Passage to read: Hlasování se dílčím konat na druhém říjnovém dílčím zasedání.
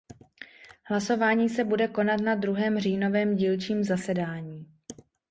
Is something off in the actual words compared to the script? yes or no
yes